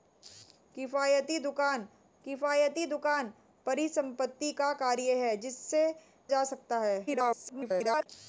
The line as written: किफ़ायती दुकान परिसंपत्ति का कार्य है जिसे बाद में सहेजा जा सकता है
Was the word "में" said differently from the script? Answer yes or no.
yes